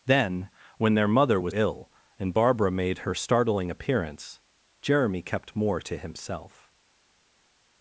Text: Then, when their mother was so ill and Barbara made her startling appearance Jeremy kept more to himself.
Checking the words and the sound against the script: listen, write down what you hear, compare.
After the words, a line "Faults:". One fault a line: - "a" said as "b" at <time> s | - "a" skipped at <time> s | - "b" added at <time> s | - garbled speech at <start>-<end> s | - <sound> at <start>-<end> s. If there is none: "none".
Then, when their mother was ill and Barbara made her startling appearance Jeremy kept more to himself.
Faults:
- "so" skipped at 1.5 s